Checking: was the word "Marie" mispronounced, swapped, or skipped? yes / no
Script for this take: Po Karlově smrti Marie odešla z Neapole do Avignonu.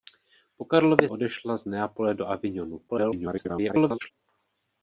yes